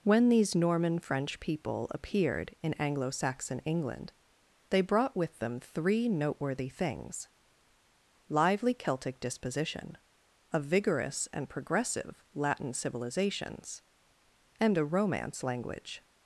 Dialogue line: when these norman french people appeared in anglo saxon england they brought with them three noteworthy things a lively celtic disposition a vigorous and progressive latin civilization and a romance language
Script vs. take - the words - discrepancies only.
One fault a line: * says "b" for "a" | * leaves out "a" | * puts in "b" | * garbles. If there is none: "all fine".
* leaves out "a"
* says "civilizations" for "civilization"